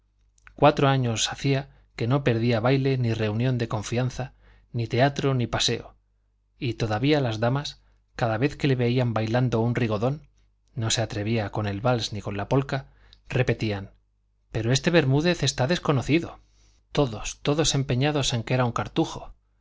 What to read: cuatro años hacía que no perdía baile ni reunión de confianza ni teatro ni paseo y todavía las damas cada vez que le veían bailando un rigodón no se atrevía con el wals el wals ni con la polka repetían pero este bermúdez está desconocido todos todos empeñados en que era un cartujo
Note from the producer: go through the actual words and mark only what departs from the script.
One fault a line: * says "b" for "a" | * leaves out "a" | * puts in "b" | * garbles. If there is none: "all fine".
* leaves out "el wals"